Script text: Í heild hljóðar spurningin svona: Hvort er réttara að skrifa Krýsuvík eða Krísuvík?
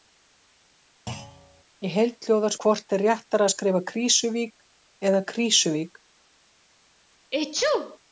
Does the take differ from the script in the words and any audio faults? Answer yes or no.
yes